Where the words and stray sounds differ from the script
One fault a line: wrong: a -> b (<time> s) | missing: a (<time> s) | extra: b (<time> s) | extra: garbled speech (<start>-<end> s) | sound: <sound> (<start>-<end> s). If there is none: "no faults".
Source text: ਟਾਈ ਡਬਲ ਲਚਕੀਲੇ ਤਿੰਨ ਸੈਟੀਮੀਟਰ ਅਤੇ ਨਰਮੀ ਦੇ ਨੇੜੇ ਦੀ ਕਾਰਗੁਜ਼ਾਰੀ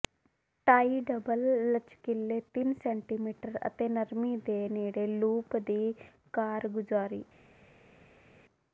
extra: ਲੂਪ (5.1 s)